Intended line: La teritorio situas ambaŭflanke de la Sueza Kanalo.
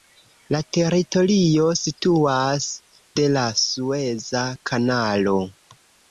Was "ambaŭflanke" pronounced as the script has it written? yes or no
no